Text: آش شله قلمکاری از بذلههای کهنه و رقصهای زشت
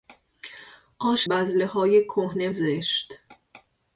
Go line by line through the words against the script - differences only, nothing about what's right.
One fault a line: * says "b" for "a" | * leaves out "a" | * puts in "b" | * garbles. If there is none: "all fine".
* leaves out "شله قلمکاری از"
* leaves out "و رقصهای"